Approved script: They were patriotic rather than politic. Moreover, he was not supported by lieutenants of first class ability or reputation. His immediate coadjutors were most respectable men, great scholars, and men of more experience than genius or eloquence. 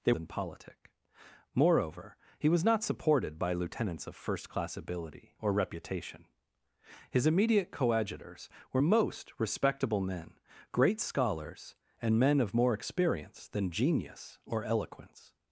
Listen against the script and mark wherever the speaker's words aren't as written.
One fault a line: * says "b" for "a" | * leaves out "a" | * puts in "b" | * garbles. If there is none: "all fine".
* leaves out "were patriotic rather"